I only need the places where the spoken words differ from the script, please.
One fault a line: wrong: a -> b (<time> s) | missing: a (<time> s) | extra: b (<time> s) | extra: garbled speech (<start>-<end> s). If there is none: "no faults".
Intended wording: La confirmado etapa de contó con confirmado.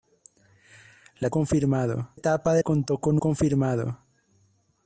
no faults